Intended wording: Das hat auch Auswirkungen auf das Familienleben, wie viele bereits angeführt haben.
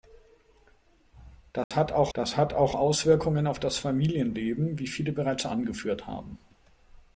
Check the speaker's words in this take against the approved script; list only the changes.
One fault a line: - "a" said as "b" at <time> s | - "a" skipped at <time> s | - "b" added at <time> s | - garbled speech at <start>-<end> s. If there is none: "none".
- "das hat auch" added at 2.1 s